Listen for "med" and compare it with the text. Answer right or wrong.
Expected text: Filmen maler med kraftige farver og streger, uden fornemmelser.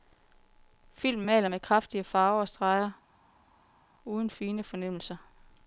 right